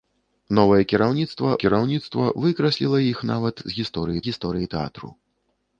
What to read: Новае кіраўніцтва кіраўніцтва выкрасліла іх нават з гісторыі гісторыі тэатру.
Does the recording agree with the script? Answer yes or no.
yes